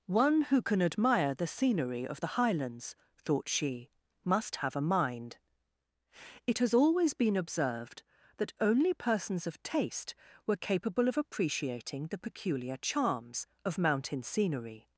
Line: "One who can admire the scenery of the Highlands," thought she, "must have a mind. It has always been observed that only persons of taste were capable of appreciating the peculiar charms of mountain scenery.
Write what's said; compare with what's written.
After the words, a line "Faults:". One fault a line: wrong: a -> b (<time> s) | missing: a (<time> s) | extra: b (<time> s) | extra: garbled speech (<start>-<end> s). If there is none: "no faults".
"One who can admire the scenery of the Highlands," thought she, "must have a mind. It has always been observed that only persons of taste were capable of appreciating the peculiar charms of mountain scenery.
Faults:
no faults